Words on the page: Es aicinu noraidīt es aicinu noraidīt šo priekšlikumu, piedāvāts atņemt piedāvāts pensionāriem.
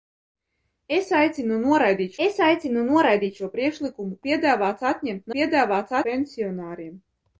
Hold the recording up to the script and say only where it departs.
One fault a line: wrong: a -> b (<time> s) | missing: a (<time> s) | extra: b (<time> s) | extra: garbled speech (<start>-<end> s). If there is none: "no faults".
no faults